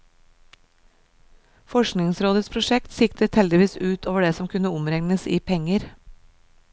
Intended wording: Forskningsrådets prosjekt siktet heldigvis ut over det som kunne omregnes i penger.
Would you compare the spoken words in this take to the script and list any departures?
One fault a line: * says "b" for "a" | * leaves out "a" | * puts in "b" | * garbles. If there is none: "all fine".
all fine